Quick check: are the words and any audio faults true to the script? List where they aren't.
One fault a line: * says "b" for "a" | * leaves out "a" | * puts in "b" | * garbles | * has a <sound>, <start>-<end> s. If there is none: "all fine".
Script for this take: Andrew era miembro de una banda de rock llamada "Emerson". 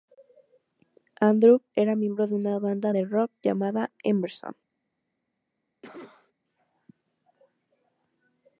* has a cough, 5.8-6.3 s